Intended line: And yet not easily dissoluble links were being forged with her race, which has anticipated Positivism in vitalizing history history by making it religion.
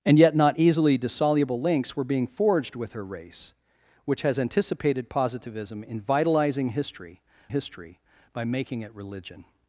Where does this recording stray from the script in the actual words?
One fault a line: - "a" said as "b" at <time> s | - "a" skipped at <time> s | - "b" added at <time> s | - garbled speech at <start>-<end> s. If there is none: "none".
none